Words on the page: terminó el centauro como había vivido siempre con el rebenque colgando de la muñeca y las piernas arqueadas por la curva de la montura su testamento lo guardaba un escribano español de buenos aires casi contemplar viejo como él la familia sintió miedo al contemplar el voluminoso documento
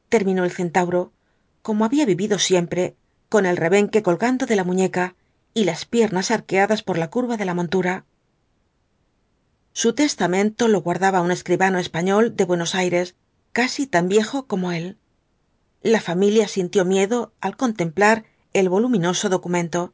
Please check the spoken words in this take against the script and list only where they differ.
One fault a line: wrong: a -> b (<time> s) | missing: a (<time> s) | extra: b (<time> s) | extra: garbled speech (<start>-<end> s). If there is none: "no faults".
wrong: contemplar -> tan (13.9 s)